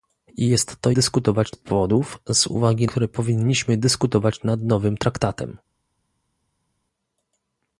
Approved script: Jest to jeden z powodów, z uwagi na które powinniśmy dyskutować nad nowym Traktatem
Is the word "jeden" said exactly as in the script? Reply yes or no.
no